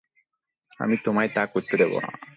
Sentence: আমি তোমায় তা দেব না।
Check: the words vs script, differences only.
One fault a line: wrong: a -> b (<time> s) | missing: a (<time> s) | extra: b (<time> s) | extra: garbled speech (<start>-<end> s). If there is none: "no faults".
extra: করতে (1.5 s)